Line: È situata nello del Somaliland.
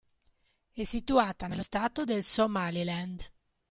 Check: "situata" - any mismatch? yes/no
no